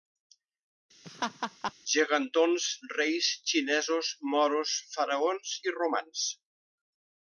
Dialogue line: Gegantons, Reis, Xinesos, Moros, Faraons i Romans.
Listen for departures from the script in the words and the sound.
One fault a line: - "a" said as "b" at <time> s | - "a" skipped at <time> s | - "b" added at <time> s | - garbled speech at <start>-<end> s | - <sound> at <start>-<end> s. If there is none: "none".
- laugh at 1.0-1.7 s